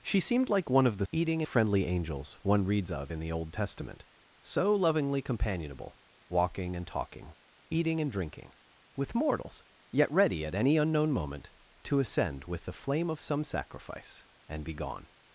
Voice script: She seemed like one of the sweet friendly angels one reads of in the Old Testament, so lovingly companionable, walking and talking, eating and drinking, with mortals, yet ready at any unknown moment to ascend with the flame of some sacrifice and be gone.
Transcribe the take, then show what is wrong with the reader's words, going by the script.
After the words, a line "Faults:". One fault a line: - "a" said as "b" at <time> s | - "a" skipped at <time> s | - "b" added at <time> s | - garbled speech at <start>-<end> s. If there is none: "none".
She seemed like one of the eating friendly angels one reads of in the Old Testament, so lovingly companionable, walking and talking, eating and drinking, with mortals, yet ready at any unknown moment to ascend with the flame of some sacrifice and be gone.
Faults:
- "sweet" said as "eating" at 1.1 s